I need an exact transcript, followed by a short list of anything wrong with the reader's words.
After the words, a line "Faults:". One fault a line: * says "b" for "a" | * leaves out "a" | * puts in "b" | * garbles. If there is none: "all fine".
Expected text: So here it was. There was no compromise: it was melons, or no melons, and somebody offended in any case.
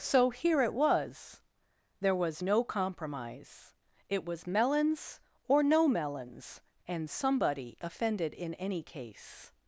So here it was. There was no compromise: it was melons, or no melons, and somebody offended in any case.
Faults:
all fine